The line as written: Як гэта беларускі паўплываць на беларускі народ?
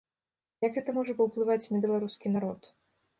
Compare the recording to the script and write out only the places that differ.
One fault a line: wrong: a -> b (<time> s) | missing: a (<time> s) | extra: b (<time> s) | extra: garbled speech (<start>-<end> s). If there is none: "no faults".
wrong: беларускі -> можа (1.0 s)